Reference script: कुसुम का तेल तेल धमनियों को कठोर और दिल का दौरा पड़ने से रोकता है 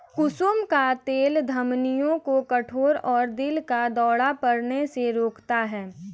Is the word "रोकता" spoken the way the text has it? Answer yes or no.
yes